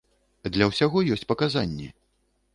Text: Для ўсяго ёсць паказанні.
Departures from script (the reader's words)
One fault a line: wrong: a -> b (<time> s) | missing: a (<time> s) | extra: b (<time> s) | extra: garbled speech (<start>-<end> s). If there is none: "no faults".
no faults